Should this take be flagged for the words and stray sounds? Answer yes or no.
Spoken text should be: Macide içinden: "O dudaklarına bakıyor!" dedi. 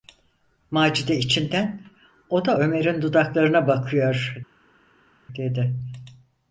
yes